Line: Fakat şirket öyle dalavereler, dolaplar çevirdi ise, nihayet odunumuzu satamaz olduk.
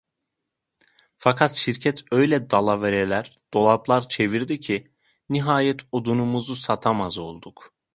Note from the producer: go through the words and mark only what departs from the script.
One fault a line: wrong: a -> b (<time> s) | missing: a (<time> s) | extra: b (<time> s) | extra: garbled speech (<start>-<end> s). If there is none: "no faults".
wrong: ise -> ki (4.6 s)